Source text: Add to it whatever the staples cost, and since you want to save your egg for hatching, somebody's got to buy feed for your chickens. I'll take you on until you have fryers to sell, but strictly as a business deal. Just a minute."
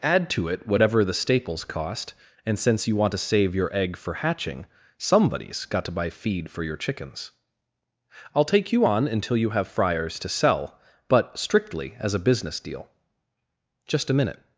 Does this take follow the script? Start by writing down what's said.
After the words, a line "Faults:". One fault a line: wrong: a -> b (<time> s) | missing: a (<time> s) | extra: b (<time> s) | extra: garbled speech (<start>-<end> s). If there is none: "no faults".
Add to it whatever the staples cost, and since you want to save your egg for hatching, somebody's got to buy feed for your chickens. I'll take you on until you have fryers to sell, but strictly as a business deal. Just a minute."
Faults:
no faults